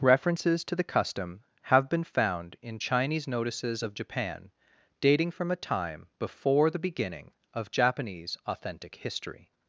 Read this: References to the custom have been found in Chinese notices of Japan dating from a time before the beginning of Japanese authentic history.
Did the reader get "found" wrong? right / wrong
right